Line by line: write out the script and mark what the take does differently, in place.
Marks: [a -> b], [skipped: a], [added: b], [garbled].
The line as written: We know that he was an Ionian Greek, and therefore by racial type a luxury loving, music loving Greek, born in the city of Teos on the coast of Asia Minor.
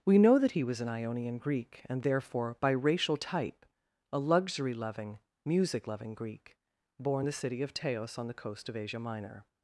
We know that he was an Ionian Greek, and therefore by racial type a luxury loving, music loving Greek, born [skipped: in] the city of Teos on the coast of Asia Minor.